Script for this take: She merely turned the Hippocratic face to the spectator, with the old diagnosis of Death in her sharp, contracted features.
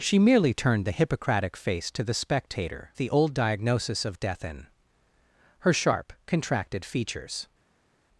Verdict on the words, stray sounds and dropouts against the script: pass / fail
fail